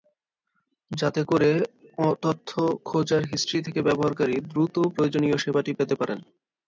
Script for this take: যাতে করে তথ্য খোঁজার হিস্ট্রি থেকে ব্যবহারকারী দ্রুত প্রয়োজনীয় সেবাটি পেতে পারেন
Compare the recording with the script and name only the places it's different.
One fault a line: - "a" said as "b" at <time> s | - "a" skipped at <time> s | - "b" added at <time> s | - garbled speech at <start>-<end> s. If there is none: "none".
none